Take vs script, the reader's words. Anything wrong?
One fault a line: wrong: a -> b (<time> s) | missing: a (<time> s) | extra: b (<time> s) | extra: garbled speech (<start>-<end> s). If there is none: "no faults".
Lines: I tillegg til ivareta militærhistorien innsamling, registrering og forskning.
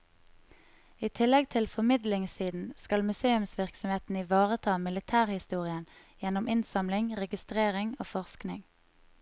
extra: formidlingssiden skal museumsvirksomheten (1.7 s)
extra: gjennom (6.2 s)